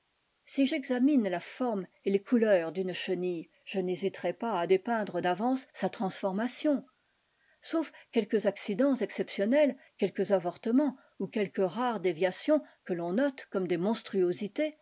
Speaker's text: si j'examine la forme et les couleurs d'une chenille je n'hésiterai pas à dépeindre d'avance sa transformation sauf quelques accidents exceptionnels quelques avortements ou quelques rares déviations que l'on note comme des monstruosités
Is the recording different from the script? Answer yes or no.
no